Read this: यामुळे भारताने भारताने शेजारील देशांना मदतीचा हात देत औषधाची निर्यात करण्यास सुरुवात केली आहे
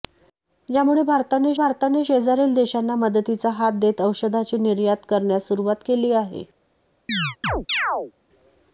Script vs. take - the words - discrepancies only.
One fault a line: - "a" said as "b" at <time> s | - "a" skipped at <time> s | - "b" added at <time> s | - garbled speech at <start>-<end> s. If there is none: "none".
none